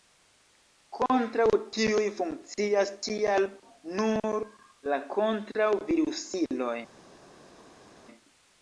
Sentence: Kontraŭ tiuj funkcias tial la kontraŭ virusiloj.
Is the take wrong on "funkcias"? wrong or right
right